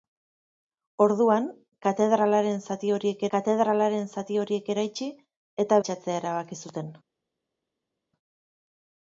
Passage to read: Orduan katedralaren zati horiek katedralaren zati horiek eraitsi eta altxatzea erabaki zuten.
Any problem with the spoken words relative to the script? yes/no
no